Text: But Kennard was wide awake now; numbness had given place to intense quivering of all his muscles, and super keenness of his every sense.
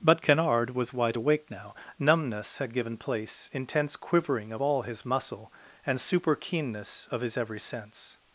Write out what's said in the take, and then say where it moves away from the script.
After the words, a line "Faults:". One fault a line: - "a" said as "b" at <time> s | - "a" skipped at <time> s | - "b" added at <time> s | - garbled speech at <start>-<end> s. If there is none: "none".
But Kennard was wide awake now; numbness had given place intense quivering of all his muscle, and super keenness of his every sense.
Faults:
- "to" skipped at 3.5 s
- "muscles" said as "muscle" at 5.1 s